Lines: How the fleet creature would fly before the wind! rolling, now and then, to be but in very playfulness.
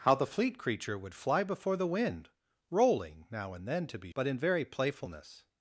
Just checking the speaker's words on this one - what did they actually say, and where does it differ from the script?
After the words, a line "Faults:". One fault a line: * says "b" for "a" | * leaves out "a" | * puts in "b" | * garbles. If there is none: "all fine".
How the fleet creature would fly before the wind! rolling, now and then, to be but in very playfulness.
Faults:
all fine